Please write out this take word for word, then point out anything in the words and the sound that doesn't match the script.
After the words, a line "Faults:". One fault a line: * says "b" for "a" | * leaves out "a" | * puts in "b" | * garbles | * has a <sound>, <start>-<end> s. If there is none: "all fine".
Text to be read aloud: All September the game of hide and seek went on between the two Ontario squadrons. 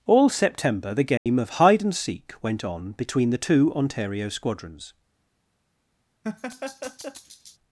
All September the game of hide and seek went on between the two Ontario squadrons.
Faults:
* has a dropout, 1.2-1.3 s
* has a laugh, 6.2-7.6 s